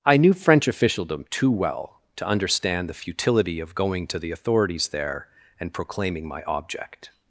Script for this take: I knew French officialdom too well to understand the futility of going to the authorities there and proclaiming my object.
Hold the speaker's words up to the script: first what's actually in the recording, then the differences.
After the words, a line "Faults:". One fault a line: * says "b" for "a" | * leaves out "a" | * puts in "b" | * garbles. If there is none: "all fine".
I knew French officialdom too well to understand the futility of going to the authorities there and proclaiming my object.
Faults:
all fine